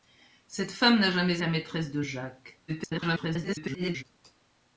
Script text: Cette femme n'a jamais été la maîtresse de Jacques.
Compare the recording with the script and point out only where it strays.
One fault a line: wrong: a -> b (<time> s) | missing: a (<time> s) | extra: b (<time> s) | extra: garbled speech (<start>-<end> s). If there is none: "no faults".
missing: été (1.4 s)
extra: garbled speech (2.7-4.0 s)